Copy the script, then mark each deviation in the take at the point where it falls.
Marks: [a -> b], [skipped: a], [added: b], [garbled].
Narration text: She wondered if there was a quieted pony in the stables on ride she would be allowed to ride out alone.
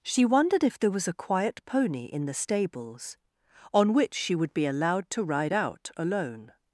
She wondered if there was a [quieted -> quiet] pony in the stables on [ride -> which] she would be allowed to ride out alone.